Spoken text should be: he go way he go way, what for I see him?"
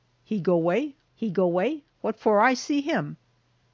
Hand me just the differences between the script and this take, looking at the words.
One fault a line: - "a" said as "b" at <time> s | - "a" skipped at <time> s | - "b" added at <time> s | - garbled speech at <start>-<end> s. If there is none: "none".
none